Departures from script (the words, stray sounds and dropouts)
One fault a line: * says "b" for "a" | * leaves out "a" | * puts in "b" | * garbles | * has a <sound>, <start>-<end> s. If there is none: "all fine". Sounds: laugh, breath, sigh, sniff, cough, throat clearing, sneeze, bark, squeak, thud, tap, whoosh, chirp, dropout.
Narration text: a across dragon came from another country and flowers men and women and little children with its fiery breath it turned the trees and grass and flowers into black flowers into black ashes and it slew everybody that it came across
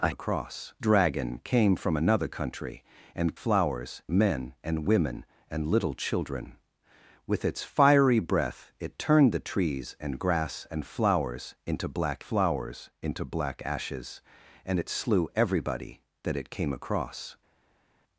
all fine